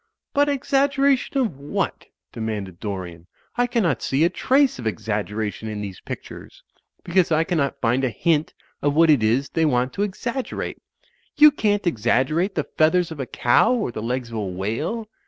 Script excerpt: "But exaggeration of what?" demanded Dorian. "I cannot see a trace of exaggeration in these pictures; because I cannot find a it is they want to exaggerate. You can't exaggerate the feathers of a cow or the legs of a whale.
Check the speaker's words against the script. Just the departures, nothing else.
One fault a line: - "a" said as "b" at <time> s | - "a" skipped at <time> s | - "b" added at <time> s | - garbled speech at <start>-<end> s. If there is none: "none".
- "hint of what" added at 8.1 s